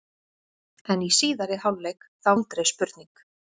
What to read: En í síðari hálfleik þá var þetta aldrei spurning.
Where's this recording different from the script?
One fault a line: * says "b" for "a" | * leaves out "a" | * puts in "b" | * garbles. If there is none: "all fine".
* leaves out "var þetta"